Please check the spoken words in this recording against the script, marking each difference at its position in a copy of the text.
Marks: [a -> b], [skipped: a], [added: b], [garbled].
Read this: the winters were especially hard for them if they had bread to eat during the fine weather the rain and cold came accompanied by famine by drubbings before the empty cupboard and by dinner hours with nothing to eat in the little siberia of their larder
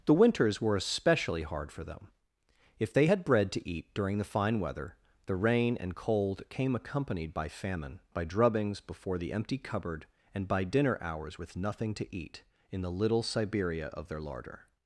the winters were especially hard for them if they had bread to eat during the fine weather the rain and cold came accompanied by famine by drubbings before the empty cupboard and by dinner hours with nothing to eat in the little siberia of their larder